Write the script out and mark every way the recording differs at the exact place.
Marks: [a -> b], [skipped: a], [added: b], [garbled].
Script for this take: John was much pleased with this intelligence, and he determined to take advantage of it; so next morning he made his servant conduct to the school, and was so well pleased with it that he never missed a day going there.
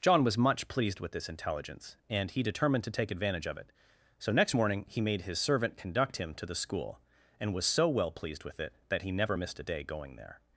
John was much pleased with this intelligence, and he determined to take advantage of it; so next morning he made his servant conduct [added: him] to the school, and was so well pleased with it that he never missed a day going there.